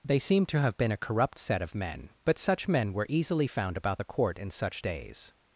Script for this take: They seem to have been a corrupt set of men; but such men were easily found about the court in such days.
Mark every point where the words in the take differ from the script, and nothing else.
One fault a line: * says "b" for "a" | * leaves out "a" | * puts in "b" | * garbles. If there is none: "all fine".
all fine